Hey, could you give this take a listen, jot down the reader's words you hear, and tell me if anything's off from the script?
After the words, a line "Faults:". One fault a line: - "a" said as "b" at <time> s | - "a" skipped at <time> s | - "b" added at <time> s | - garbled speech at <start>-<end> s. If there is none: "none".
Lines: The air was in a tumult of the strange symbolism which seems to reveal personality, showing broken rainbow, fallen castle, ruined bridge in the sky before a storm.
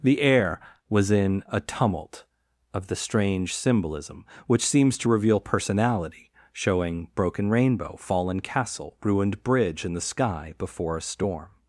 The air was in a tumult of the strange symbolism which seems to reveal personality, showing broken rainbow, fallen castle, ruined bridge in the sky before a storm.
Faults:
none